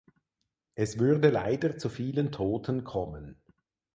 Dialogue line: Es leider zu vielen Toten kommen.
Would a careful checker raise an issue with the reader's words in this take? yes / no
yes